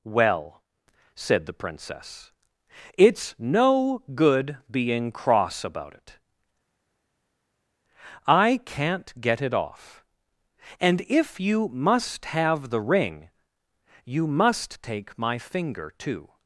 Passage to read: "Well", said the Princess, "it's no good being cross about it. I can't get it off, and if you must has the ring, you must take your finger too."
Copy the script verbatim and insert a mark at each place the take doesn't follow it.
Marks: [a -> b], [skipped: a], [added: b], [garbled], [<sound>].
"Well", said the Princess, "it's no good being cross about it. I can't get it off, and if you must [has -> have] the ring, you must take [your -> my] finger too."